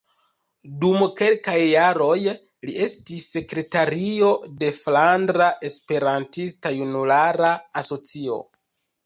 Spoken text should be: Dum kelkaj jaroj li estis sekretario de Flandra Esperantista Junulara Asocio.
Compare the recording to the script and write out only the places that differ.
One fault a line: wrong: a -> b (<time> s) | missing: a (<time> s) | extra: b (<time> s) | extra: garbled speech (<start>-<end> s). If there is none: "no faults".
no faults